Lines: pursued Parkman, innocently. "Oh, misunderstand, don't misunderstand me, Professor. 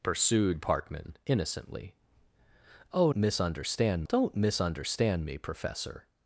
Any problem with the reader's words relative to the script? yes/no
no